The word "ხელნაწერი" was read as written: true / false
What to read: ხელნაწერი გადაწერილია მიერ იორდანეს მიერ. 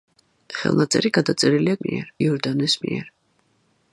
true